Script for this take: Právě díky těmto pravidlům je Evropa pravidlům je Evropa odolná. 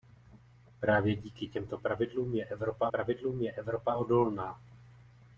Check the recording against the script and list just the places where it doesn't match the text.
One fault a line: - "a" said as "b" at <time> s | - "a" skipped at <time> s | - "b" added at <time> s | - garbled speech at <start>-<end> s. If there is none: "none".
none